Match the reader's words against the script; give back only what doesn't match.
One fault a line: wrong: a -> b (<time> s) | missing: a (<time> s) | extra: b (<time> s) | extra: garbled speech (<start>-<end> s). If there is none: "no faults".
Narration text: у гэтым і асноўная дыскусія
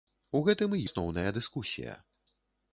no faults